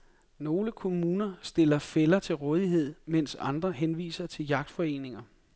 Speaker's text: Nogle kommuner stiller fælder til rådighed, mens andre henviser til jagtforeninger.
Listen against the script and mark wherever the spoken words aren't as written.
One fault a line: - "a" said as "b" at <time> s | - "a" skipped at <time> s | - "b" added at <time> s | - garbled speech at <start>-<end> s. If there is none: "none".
none